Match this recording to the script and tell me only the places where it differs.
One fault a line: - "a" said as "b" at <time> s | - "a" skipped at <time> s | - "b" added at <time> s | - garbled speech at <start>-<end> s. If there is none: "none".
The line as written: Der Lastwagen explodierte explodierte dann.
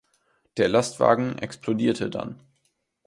- "explodierte" skipped at 2.1 s